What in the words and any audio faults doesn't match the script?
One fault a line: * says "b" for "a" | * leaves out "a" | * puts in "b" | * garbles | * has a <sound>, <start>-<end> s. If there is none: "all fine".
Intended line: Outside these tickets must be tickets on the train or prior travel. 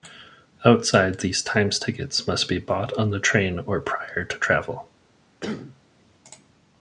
* puts in "times"
* says "bought" for "tickets"
* puts in "to"
* has a cough, 5.4-5.8 s